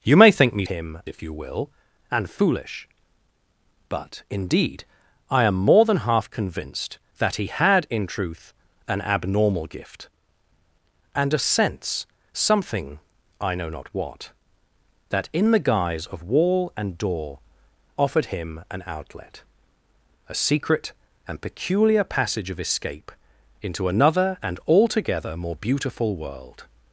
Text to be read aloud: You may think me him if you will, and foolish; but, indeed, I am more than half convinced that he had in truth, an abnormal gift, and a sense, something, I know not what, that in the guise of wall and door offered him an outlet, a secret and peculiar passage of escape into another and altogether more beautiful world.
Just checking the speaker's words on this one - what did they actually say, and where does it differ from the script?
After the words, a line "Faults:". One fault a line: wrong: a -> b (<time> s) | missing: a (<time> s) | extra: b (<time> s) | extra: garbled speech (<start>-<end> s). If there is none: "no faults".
You may think me him if you will, and foolish; but, indeed, I am more than half convinced that he had in truth, an abnormal gift, and a sense, something, I know not what, that in the guise of wall and door offered him an outlet, a secret and peculiar passage of escape into another and altogether more beautiful world.
Faults:
no faults